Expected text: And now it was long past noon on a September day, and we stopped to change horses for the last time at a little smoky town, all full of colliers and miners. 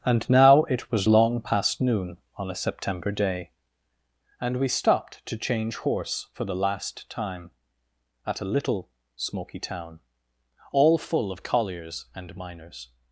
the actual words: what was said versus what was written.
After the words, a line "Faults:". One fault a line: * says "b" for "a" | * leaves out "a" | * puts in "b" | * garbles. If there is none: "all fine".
And now it was long past noon on a September day, and we stopped to change horse for the last time at a little smoky town, all full of colliers and miners.
Faults:
* says "horse" for "horses"